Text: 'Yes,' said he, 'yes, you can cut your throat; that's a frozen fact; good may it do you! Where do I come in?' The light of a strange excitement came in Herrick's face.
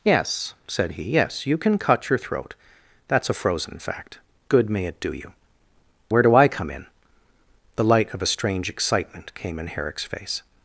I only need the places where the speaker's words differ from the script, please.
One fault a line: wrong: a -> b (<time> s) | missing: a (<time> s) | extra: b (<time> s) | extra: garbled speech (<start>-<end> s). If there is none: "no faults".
no faults